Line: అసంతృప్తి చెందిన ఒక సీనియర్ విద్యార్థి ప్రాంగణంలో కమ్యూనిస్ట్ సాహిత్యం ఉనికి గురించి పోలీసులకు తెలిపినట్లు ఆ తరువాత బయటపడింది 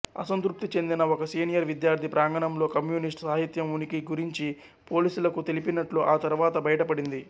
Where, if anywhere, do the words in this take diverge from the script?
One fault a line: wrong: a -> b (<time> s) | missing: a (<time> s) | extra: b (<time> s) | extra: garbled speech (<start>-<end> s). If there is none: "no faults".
no faults